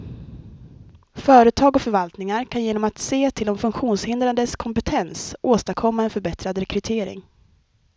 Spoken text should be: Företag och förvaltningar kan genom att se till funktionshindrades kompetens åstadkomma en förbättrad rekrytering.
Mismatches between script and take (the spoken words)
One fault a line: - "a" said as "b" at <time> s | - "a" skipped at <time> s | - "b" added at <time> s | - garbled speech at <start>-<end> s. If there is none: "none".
- "de" added at 3.4 s